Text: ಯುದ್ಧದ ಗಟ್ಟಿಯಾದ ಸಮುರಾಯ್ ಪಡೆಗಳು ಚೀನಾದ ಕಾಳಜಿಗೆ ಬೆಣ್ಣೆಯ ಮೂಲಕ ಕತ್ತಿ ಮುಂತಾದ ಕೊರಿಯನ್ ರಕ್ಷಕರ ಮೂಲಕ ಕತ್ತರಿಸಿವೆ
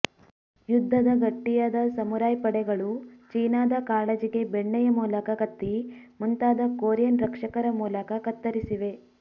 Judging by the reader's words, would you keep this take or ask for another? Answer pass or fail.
pass